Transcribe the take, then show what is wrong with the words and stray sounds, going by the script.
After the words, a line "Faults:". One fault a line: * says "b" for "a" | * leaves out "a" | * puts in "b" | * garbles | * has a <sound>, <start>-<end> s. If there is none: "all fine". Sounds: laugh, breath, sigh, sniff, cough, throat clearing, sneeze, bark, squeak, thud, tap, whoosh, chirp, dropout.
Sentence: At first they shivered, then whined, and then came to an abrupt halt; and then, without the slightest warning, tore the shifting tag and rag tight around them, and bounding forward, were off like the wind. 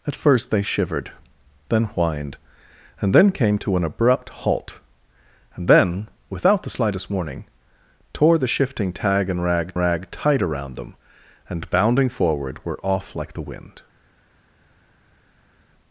At first they shivered, then whined, and then came to an abrupt halt; and then, without the slightest warning, tore the shifting tag and rag rag tight around them, and bounding forward, were off like the wind.
Faults:
* puts in "rag"